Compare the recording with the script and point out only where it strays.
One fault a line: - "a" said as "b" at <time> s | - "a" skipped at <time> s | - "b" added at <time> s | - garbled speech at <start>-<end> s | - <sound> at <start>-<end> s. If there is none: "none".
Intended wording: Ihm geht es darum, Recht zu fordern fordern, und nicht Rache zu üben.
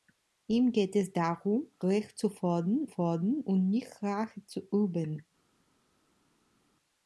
none